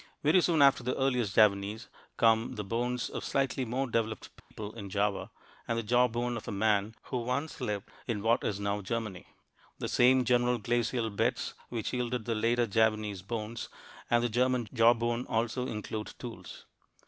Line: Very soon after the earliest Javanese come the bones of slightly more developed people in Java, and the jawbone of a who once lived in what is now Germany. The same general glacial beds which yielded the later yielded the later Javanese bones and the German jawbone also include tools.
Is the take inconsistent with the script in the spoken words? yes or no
yes